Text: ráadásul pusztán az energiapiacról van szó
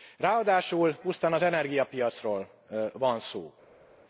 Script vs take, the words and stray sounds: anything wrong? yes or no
no